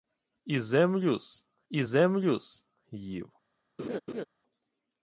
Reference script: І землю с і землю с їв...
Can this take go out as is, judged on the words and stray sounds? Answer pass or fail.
fail